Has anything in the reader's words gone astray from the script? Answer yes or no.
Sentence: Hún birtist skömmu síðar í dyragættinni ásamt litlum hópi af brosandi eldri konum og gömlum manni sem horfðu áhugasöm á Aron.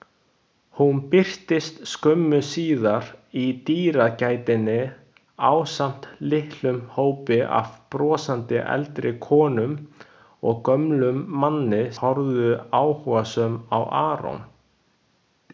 yes